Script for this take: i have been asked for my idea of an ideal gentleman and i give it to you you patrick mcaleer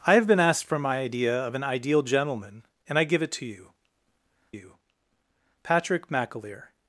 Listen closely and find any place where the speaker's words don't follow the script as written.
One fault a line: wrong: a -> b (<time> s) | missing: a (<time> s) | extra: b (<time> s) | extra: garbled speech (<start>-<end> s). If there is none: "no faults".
no faults